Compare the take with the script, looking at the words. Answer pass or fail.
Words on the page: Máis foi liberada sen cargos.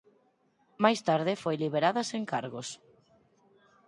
fail